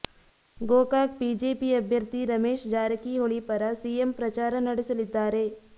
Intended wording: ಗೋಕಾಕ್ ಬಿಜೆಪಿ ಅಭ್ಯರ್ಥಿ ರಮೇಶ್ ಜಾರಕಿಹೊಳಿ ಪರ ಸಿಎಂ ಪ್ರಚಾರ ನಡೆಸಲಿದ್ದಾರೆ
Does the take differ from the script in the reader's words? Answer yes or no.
no